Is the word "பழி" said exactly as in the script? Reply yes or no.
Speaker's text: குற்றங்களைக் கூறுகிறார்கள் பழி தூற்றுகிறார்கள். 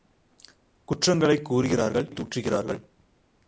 no